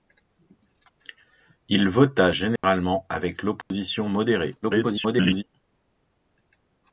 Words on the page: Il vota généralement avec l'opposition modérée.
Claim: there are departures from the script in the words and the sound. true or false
true